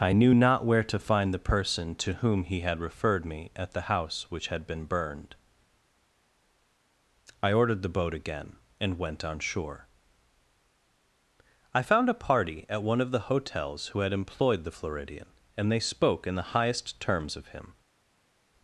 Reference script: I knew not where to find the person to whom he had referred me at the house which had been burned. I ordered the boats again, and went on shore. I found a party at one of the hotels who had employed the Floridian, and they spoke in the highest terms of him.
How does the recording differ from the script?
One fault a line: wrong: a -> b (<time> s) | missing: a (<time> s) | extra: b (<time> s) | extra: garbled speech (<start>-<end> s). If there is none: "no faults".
wrong: boats -> boat (8.0 s)